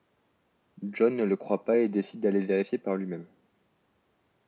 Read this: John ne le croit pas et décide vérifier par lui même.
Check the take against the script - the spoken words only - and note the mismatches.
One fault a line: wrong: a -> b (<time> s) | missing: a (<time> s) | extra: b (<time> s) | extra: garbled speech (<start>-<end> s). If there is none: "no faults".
extra: d'aller (2.2 s)